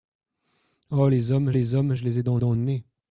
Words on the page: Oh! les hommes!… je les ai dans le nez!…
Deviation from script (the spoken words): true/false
true